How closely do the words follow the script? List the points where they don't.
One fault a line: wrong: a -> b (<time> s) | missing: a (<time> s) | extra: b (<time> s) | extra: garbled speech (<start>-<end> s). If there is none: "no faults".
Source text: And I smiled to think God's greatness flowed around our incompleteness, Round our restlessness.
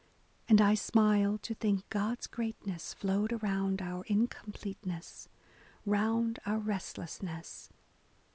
no faults